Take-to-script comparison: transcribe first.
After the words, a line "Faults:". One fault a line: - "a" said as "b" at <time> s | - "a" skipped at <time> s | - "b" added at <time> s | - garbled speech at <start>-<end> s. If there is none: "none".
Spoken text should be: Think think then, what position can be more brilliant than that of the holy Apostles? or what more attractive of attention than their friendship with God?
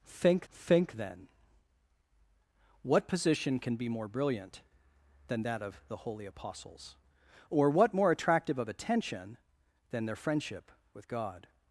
Think think then, what position can be more brilliant than that of the holy Apostles? or what more attractive of attention than their friendship with God?
Faults:
none